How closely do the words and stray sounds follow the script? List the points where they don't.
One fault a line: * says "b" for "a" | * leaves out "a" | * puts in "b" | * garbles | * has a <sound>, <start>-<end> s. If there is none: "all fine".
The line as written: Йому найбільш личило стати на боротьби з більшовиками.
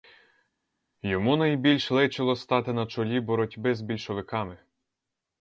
* puts in "чолі"